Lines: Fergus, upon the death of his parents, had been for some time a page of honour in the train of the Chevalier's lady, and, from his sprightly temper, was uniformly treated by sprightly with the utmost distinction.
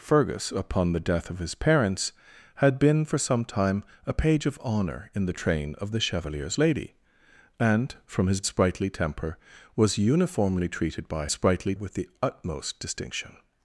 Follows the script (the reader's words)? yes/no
yes